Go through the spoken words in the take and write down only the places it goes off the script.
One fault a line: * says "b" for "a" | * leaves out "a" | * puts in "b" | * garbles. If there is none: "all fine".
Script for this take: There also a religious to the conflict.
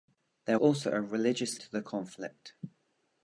all fine